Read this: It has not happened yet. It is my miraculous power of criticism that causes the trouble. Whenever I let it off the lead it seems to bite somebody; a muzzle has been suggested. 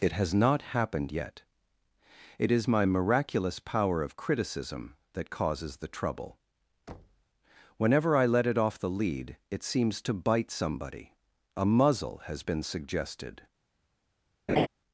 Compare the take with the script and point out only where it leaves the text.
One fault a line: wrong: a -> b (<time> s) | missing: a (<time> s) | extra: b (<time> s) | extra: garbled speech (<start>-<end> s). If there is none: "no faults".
no faults